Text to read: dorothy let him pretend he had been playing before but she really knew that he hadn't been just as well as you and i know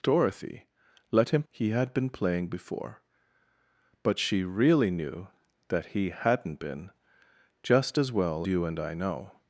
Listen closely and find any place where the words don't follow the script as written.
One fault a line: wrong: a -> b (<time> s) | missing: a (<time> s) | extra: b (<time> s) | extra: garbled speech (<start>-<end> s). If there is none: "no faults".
missing: pretend (1.4 s)
missing: as (8.5 s)